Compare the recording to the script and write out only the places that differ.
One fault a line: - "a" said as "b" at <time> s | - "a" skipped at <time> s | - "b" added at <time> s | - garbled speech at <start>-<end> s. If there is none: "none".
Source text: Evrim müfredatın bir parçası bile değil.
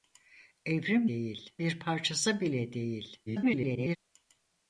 - "müfredatın" said as "değil" at 1.1 s
- garbled speech at 3.3-4.0 s